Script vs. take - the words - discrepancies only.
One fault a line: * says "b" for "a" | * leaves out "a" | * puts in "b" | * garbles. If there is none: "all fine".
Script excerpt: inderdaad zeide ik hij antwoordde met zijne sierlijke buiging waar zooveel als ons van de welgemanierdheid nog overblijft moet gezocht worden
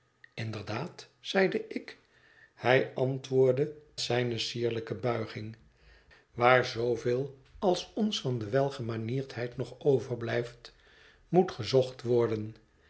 * leaves out "met"